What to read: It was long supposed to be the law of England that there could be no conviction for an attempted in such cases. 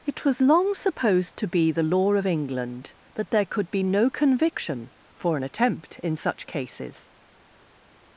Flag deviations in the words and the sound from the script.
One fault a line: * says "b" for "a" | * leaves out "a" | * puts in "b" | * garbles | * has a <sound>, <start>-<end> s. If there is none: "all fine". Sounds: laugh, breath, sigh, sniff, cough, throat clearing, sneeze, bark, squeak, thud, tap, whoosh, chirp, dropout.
* says "attempt" for "attempted"